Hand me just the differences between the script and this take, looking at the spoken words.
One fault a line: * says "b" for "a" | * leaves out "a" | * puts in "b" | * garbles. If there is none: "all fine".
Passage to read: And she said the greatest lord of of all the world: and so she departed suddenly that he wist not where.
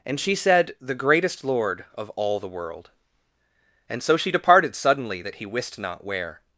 * leaves out "of"